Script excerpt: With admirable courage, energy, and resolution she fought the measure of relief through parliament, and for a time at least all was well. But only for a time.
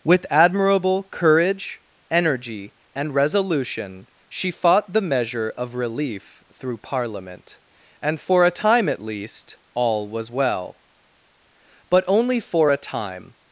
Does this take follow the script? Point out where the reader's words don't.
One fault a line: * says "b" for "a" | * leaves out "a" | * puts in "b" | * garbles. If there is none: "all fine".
all fine